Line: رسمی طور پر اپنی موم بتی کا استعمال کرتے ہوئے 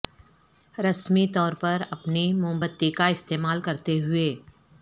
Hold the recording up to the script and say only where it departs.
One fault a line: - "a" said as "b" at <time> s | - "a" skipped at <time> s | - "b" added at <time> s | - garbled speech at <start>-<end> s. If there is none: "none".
none